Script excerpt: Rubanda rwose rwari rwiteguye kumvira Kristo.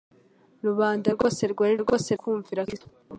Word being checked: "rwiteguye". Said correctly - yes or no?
no